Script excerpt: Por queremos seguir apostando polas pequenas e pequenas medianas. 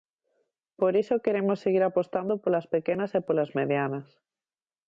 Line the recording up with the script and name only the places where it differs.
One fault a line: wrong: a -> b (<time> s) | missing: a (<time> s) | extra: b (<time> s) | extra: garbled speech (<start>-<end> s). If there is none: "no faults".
extra: iso (1.0 s)
wrong: pequenas -> polas (3.3 s)